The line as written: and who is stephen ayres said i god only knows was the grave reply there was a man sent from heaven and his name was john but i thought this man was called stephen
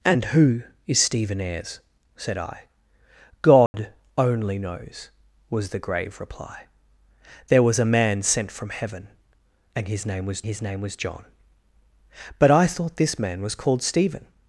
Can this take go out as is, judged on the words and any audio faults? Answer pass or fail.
fail